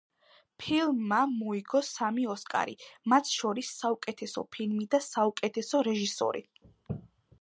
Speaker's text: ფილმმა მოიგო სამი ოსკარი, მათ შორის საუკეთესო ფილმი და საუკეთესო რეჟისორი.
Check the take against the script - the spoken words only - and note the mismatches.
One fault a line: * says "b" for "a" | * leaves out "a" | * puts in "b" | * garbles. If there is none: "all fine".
all fine